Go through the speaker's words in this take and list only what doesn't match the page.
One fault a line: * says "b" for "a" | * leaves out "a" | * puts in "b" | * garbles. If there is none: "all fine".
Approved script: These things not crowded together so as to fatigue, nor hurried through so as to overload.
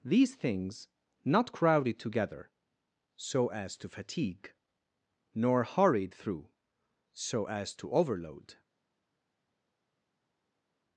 all fine